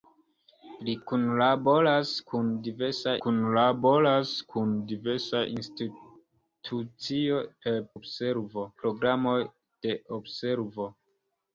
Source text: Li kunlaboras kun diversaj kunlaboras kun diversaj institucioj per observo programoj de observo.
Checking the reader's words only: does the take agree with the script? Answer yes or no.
yes